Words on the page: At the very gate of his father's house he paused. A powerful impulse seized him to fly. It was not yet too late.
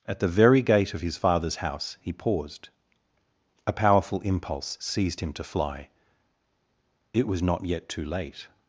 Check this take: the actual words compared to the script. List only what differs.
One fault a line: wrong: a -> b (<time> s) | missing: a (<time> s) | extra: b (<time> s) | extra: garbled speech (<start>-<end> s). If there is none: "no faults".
no faults